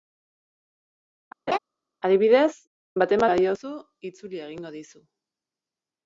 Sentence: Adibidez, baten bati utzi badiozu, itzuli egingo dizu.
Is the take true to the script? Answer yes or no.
no